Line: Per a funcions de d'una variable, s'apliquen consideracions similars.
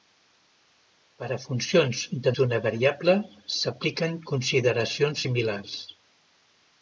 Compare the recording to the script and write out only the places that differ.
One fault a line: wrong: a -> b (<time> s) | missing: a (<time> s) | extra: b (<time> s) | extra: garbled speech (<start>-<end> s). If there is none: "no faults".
no faults